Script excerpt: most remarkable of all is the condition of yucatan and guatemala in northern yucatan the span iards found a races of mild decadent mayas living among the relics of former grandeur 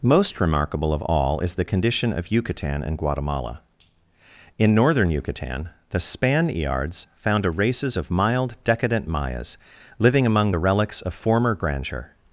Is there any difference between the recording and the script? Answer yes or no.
no